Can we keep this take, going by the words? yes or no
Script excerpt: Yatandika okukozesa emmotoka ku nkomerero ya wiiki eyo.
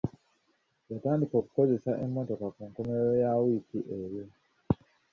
yes